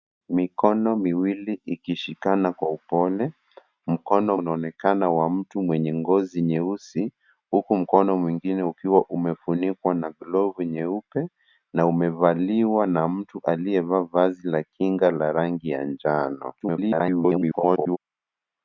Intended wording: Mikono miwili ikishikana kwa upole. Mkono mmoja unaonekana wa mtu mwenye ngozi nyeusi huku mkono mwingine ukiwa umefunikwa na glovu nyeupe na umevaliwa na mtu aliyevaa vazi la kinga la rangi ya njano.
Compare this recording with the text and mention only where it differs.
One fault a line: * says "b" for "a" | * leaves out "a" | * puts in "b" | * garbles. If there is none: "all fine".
* leaves out "mmoja"
* garbles